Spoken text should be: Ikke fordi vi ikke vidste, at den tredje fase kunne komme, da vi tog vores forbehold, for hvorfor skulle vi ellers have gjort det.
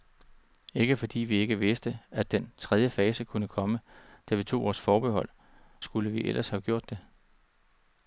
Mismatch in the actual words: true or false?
true